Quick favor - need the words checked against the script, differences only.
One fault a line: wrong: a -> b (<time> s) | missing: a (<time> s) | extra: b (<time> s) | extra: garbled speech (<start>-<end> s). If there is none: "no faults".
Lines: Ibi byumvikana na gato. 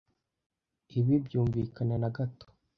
no faults